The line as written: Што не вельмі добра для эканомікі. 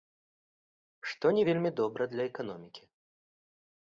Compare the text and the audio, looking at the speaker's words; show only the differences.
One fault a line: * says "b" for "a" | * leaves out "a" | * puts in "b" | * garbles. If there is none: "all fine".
all fine